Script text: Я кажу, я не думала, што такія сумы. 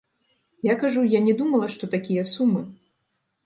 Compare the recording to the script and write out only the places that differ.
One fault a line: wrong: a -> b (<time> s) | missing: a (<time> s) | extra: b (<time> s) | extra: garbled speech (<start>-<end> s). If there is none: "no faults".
no faults